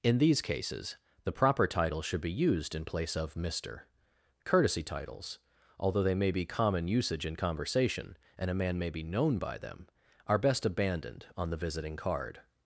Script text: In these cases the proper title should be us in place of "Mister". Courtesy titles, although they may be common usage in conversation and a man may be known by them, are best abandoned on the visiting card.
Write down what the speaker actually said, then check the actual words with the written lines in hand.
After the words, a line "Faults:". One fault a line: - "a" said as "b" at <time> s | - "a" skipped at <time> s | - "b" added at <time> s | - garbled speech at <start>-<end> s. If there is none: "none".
In these cases the proper title should be used in place of "Mister". Courtesy titles, although they may be common usage in conversation and a man may be known by them, are best abandoned on the visiting card.
Faults:
- "us" said as "used" at 2.3 s